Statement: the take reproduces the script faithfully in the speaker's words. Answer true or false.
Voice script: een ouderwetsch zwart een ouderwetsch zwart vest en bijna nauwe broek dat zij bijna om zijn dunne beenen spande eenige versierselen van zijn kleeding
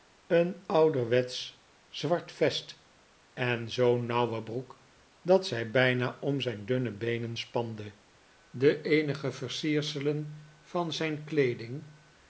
false